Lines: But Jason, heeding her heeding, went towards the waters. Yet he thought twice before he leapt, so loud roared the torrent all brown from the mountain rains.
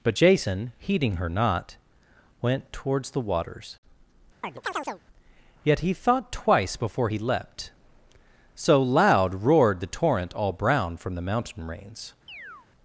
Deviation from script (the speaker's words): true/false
true